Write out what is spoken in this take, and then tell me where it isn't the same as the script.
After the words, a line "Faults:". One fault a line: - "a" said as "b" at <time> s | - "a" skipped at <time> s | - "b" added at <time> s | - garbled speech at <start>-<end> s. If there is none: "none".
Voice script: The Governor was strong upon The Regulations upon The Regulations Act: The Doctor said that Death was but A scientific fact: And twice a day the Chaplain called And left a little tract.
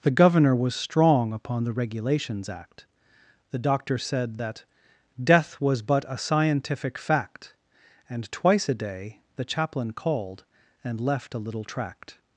The Governor was strong upon The Regulations Act: The Doctor said that Death was but A scientific fact: And twice a day the Chaplain called And left a little tract.
Faults:
- "upon The Regulations" skipped at 2.5 s